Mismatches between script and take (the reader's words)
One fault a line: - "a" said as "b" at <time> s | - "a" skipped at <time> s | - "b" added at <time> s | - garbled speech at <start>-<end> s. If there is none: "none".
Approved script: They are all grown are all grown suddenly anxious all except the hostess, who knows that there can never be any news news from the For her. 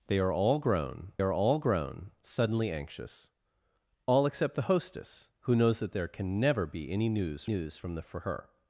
none